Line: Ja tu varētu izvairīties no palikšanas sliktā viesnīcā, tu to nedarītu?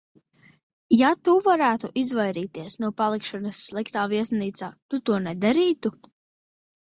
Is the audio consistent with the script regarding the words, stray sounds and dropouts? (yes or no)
yes